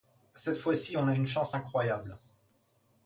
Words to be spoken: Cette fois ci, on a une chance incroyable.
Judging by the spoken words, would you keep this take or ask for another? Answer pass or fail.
pass